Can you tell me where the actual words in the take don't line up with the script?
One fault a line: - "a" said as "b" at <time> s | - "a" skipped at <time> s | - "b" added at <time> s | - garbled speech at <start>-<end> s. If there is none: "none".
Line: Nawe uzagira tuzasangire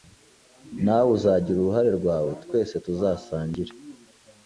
- "uruhare rwawe twese" added at 1.6 s